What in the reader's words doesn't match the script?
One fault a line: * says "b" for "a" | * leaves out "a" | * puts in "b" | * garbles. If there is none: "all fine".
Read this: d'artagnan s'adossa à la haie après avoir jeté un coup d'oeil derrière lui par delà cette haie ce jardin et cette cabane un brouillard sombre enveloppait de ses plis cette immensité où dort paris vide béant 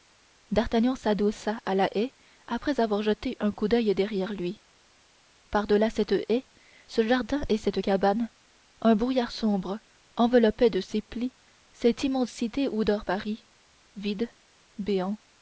all fine